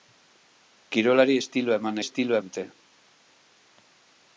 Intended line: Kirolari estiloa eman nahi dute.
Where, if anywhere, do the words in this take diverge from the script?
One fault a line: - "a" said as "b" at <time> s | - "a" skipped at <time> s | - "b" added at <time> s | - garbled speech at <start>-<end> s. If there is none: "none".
- "nahi" said as "estiloa" at 2.0 s